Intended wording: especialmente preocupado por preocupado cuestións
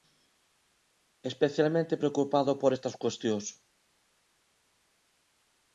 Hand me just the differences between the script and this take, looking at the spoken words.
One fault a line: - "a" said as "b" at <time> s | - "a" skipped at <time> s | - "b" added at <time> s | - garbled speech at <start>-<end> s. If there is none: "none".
- "preocupado" said as "estas" at 2.8 s